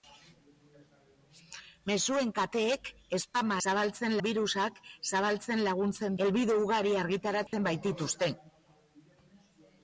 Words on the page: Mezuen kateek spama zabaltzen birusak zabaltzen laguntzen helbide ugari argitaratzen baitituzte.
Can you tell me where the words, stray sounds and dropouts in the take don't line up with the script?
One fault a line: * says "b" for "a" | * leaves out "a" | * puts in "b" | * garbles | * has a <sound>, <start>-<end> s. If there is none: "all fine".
* has a dropout, 7.5-7.5 s